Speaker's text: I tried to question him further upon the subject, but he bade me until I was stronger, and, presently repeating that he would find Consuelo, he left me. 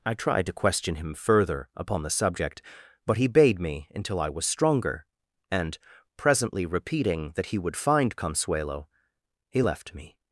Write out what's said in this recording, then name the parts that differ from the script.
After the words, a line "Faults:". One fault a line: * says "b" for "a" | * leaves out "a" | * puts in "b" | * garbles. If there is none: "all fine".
I tried to question him further upon the subject, but he bade me until I was stronger, and, presently repeating that he would find Consuelo, he left me.
Faults:
all fine